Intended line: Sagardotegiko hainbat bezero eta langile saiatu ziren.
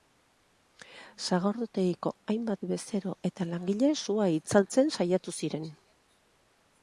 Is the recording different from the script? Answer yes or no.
yes